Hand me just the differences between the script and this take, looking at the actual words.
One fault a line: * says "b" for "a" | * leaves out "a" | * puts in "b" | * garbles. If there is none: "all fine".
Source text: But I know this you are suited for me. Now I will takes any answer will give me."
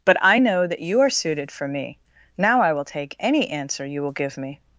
* says "that" for "this"
* says "take" for "takes"
* puts in "you"